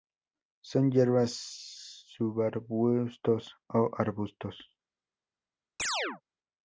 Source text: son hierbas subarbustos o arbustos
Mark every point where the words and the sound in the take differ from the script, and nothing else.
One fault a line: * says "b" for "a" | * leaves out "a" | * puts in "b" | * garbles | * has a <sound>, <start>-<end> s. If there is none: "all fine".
* has a chirp, 5.8-6.2 s